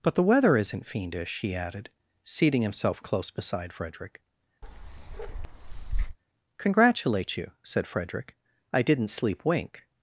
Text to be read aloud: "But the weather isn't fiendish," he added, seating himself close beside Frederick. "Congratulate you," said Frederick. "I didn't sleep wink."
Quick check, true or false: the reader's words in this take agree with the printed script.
true